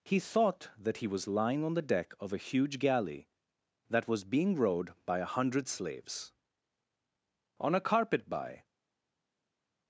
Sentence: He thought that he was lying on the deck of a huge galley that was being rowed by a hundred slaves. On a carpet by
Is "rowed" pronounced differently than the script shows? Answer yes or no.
no